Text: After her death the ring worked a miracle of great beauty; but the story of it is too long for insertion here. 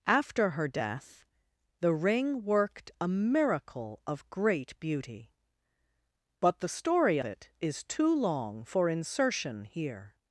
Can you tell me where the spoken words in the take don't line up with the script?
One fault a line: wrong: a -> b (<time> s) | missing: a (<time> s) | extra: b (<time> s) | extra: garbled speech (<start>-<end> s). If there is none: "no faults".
missing: of (7.2 s)